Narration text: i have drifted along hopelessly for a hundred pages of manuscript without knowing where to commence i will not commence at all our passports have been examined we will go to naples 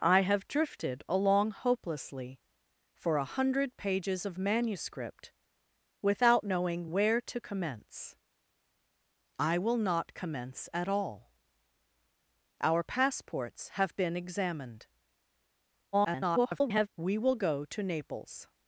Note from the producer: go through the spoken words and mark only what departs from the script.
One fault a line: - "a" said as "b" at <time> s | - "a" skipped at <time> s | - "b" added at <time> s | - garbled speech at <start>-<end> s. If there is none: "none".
- garbled speech at 15.9-16.9 s